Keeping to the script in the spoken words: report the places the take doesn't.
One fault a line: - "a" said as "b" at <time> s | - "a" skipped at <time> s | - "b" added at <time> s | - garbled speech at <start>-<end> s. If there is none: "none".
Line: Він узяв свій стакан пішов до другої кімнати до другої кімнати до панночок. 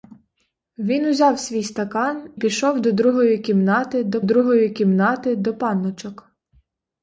none